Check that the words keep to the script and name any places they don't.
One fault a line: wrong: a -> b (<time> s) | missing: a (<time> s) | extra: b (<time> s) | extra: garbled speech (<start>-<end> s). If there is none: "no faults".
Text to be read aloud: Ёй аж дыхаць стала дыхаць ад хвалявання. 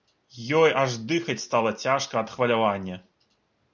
wrong: дыхаць -> цяжка (1.8 s)